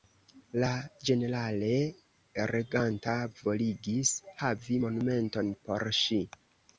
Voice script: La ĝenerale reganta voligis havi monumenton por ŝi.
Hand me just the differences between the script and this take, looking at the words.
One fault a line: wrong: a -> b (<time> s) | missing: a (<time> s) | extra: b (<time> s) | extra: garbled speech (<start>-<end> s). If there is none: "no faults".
no faults